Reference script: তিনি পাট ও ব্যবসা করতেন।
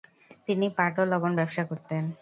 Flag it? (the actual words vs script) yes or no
yes